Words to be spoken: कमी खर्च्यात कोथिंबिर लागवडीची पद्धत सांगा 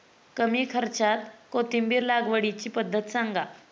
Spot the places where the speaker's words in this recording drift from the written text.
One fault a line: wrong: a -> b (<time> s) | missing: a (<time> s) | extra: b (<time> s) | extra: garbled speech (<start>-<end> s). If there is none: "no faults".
no faults